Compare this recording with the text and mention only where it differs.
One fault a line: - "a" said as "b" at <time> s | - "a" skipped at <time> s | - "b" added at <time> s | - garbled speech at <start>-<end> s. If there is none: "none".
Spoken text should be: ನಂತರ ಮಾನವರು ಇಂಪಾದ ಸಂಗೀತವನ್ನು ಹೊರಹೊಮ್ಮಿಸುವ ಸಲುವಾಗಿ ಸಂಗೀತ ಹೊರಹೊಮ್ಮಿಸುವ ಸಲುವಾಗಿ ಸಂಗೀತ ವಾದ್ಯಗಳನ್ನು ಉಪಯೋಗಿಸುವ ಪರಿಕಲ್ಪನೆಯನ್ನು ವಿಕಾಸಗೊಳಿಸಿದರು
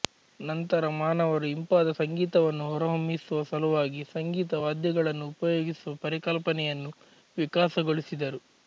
- "ಹೊರಹೊಮ್ಮಿಸುವ ಸಲುವಾಗಿ ಸಂಗೀತ" skipped at 4.6 s